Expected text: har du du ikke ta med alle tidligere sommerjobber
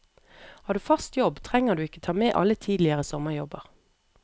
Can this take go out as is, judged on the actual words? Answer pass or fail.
fail